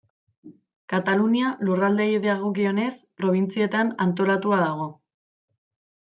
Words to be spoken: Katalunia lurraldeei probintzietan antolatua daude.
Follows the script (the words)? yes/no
no